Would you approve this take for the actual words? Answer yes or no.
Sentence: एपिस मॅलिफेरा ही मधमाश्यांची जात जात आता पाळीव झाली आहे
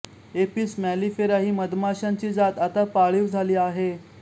no